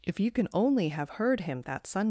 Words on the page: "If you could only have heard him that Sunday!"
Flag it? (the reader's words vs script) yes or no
yes